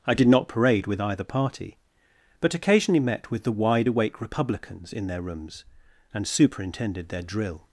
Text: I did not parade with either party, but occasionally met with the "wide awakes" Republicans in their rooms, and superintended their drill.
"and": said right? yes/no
yes